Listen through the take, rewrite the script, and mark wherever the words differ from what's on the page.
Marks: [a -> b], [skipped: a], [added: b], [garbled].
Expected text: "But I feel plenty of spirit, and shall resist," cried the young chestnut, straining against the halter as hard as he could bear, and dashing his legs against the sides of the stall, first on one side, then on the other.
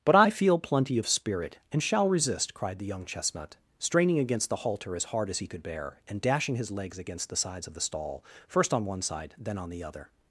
"But I feel plenty of spirit, and shall resist," cried the young chestnut, straining against the halter as hard as he could bear, and dashing his legs against the sides of the stall, first on one side, then on the other.